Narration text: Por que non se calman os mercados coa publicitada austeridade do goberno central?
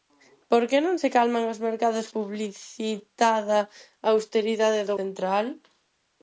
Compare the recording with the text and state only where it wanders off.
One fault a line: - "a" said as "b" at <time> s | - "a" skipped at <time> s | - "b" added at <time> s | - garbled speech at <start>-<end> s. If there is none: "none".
- "coa" skipped at 2.1 s
- "goberno" skipped at 5.0 s